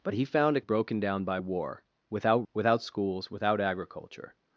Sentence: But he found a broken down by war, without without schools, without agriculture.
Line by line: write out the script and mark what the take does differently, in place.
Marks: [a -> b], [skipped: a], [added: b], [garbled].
But he found a broken down by war, without without schools, without agriculture.